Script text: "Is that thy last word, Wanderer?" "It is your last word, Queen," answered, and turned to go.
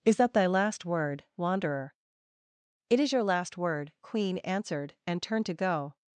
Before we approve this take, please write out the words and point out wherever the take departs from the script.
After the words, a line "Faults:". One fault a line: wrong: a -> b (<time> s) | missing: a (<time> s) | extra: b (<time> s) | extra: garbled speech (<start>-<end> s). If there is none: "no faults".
"Is that thy last word, Wanderer?" "It is your last word, Queen," answered, and turned to go.
Faults:
no faults